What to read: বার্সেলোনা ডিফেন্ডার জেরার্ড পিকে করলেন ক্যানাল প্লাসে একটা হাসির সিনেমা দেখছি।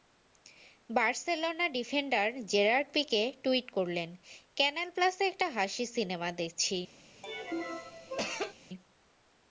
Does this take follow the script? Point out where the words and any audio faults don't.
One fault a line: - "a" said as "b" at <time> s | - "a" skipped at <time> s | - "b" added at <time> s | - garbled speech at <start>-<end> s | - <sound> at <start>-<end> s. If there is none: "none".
- "টুইট" added at 3.4 s
- cough at 7.2-8.5 s